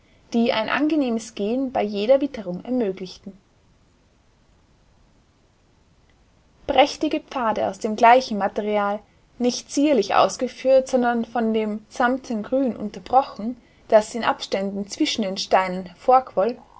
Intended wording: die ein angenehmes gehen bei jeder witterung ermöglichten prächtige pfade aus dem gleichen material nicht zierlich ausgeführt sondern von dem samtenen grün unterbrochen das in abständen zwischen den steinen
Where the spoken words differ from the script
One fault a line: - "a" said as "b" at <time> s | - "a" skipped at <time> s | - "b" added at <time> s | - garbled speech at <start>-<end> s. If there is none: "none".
none